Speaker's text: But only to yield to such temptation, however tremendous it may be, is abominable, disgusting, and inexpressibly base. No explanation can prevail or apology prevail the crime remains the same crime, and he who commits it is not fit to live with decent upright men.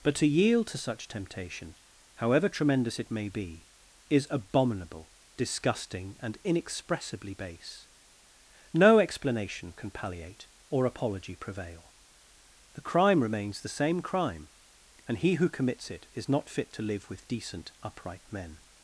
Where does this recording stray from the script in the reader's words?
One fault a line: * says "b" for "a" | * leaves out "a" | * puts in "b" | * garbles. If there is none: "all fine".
* leaves out "only"
* says "palliate" for "prevail"